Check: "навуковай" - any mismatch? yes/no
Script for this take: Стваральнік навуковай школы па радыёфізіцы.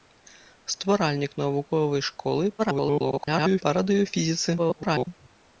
no